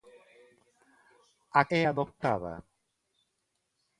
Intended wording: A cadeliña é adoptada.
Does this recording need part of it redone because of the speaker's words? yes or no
yes